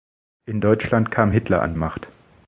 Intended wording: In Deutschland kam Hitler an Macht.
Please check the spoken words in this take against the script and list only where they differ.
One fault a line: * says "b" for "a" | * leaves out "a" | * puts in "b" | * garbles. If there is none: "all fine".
all fine